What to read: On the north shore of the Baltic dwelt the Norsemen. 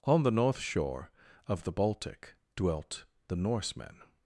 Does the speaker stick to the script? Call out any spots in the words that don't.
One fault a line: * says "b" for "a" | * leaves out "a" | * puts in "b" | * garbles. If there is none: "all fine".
all fine